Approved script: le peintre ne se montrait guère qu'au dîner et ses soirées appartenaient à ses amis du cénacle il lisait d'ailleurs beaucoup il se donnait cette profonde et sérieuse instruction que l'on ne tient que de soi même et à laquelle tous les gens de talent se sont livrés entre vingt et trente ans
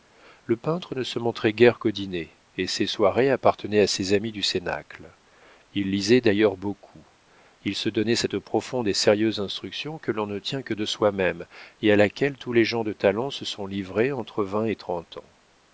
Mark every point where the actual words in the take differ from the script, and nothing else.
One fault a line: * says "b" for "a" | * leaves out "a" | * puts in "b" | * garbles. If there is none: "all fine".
all fine